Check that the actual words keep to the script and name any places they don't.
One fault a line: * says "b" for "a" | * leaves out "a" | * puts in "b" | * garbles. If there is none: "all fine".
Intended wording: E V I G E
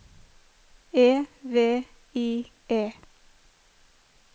* leaves out "G"